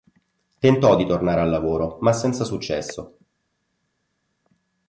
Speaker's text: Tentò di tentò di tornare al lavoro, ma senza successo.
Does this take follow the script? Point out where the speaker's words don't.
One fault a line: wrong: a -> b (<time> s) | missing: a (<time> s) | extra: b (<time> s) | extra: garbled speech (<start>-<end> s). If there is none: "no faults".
missing: tentò di (1.1 s)